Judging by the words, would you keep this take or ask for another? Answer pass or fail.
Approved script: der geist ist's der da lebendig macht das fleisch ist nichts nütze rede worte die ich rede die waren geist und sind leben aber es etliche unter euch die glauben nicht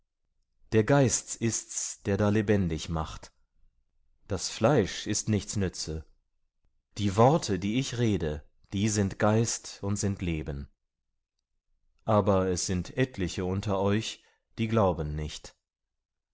fail